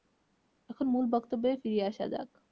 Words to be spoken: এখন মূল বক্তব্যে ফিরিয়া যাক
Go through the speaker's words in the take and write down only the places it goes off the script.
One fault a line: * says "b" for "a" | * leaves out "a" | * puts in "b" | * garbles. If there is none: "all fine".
* puts in "আসা"